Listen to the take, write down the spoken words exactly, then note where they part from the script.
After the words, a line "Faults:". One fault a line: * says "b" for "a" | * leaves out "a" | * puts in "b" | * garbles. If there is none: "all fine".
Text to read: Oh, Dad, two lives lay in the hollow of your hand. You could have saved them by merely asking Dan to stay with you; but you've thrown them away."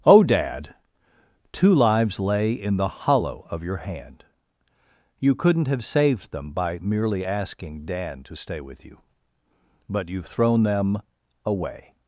Oh, Dad, two lives lay in the hollow of your hand. You couldn't have saved them by merely asking Dan to stay with you; but you've thrown them away."
Faults:
* says "couldn't" for "could"